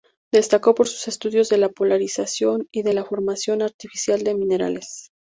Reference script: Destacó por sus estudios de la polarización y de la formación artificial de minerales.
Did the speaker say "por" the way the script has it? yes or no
yes